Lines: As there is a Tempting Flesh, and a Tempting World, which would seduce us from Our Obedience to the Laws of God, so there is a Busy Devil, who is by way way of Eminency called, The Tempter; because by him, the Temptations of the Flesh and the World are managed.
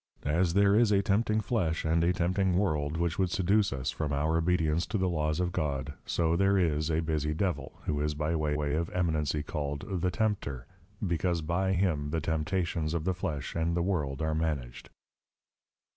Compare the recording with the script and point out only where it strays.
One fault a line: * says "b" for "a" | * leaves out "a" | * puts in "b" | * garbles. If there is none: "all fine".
all fine